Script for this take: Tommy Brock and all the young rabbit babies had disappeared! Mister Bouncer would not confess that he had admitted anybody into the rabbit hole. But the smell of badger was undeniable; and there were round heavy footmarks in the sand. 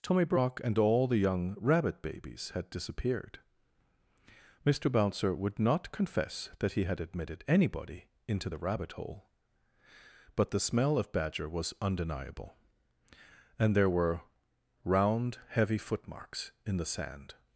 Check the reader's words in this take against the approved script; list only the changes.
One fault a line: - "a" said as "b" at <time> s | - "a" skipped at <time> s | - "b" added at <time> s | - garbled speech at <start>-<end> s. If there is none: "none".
none